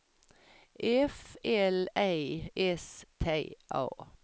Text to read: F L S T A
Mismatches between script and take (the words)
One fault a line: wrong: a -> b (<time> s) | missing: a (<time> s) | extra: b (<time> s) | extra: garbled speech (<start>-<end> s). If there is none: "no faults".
extra: E (1.9 s)